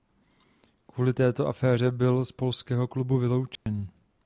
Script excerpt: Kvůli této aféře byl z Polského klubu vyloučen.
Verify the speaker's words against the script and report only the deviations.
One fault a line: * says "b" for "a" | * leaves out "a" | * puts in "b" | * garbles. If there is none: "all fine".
all fine